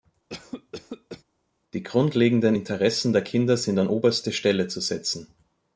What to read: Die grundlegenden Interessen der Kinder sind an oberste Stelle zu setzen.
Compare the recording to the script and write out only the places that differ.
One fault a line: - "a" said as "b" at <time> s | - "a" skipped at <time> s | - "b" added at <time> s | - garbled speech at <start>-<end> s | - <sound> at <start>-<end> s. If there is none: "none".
- cough at 0.3-1.2 s